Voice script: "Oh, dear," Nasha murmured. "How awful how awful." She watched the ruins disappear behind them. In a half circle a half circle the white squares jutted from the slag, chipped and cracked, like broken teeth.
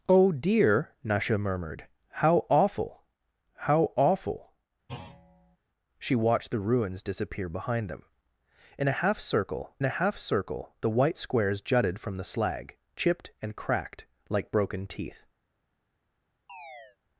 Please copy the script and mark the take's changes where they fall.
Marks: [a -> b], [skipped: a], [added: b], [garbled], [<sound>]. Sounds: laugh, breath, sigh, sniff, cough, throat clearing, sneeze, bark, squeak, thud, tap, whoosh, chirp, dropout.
"Oh, dear," Nasha murmured. "How awful how awful." [thud] She watched the ruins disappear behind them. In a half circle a half circle the white squares jutted from the slag, chipped and cracked, like broken teeth. [chirp]